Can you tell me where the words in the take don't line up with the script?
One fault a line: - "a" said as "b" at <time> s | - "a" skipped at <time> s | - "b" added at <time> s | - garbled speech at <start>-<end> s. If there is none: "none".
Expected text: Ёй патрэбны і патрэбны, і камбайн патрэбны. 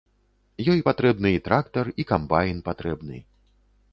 - "патрэбны" said as "трактар" at 1.5 s